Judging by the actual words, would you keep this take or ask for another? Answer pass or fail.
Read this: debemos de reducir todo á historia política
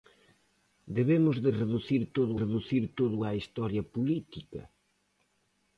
fail